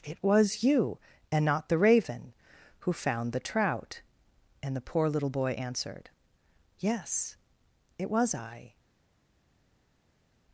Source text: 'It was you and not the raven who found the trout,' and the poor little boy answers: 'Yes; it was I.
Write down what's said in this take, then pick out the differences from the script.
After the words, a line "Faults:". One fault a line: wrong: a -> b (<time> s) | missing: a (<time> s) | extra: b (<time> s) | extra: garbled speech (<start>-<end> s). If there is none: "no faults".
'It was you and not the raven who found the trout,' and the poor little boy answered: 'Yes; it was I.
Faults:
wrong: answers -> answered (5.5 s)